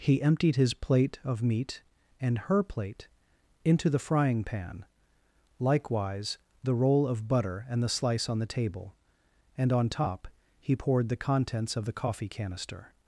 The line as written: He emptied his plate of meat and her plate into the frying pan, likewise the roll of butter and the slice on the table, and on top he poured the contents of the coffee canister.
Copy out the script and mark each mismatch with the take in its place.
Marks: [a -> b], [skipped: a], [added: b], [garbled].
He emptied his plate of meat and her plate into the frying pan, likewise the roll of butter and the slice on the table, and on top he poured the contents of the coffee canister.